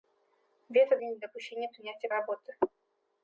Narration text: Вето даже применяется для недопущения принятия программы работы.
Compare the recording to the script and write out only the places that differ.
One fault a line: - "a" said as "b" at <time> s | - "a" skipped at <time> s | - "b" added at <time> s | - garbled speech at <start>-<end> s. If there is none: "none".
- "даже применяется" skipped at 1.0 s
- "программы" skipped at 2.1 s